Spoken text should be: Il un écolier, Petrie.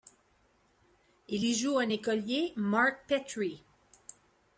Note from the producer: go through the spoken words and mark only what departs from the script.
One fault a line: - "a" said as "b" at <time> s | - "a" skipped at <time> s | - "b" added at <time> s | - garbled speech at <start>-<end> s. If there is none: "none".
- "y joue" added at 1.4 s
- "Mark" added at 2.5 s